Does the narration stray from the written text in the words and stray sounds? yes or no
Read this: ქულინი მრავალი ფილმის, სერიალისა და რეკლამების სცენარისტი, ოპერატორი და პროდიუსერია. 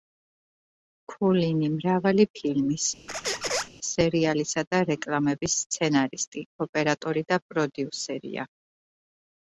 yes